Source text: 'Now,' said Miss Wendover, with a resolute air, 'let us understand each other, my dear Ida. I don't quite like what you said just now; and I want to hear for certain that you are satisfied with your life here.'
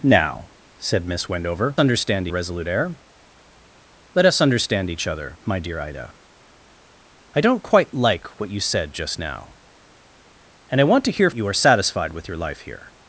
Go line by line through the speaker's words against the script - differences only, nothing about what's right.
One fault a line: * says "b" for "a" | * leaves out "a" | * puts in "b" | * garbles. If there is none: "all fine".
* says "understand" for "with"
* leaves out "for certain that"